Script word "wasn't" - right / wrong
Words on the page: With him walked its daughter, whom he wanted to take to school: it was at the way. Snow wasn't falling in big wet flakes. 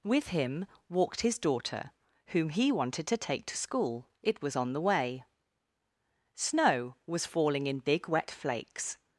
wrong